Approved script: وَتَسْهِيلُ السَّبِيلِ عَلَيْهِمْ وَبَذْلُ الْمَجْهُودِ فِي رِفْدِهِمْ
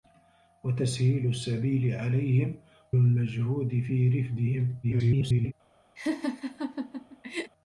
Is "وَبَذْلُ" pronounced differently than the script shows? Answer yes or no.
yes